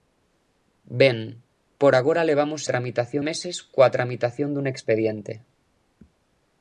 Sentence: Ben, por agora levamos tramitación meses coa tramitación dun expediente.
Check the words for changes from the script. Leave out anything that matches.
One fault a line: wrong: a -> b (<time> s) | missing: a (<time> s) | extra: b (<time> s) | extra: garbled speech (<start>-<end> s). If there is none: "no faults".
no faults